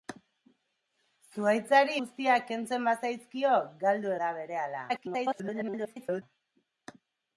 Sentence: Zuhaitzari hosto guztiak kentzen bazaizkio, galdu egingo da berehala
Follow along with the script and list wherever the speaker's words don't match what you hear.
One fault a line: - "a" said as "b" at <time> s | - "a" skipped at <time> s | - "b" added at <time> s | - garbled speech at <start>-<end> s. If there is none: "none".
- "hosto" skipped at 2.0 s
- "egingo" skipped at 4.1 s
- garbled speech at 4.9-6.2 s